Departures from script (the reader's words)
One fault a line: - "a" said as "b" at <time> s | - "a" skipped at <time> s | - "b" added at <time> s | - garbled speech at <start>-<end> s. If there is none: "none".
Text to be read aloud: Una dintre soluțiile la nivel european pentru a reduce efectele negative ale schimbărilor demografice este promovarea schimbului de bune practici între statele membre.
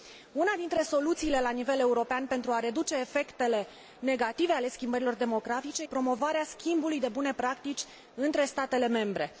- "este" skipped at 5.8 s